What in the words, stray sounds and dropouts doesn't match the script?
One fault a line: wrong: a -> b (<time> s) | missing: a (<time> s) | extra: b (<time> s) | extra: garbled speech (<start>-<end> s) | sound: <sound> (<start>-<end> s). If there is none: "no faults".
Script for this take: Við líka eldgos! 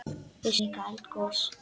no faults